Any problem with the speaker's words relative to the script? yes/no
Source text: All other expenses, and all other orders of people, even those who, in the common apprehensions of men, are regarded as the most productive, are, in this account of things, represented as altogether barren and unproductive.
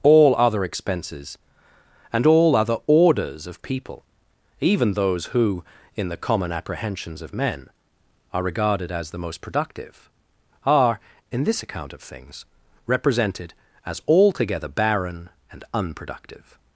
no